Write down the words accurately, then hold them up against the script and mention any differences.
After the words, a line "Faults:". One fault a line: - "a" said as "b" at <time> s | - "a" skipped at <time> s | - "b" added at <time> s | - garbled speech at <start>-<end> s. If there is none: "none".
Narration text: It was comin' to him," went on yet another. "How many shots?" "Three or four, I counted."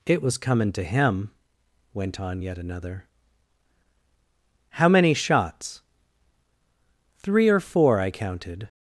It was comin' to him," went on yet another. "How many shots?" "Three or four, I counted."
Faults:
none